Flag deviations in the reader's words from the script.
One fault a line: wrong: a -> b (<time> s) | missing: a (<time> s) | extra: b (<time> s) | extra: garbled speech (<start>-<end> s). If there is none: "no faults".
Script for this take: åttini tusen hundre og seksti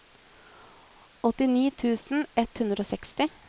extra: ett (2.4 s)